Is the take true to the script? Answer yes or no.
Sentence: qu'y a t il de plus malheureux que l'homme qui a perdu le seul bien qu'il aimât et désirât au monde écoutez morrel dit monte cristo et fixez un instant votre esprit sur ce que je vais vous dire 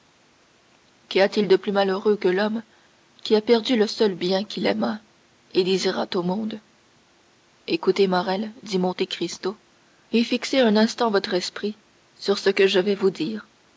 yes